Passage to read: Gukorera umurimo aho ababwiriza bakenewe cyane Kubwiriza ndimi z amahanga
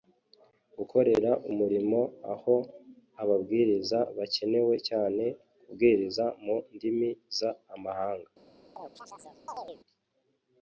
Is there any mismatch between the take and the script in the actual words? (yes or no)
yes